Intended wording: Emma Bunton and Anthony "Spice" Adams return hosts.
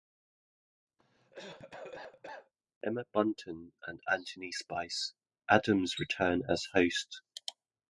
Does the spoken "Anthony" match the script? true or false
true